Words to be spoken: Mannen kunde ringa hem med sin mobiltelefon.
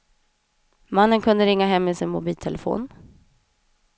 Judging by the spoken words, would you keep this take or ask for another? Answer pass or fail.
pass